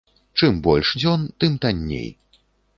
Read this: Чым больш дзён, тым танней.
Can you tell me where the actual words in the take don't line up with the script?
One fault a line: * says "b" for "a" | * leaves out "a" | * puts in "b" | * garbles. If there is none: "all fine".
all fine